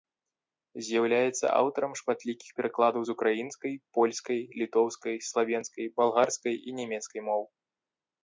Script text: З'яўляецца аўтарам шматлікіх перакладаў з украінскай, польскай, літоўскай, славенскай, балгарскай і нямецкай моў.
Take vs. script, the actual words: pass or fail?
pass